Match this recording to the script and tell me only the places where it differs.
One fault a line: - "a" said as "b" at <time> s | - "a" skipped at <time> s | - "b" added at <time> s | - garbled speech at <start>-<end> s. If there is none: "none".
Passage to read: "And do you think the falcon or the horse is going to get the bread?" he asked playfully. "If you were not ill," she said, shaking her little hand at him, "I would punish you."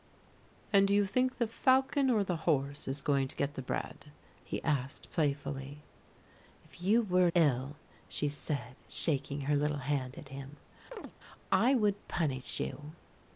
- "not" skipped at 7.3 s